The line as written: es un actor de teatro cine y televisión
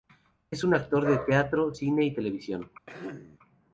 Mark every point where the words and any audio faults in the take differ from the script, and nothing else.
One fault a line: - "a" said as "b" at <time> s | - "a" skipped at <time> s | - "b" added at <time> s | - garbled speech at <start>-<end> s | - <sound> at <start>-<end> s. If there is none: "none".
- throat clearing at 2.9-3.4 s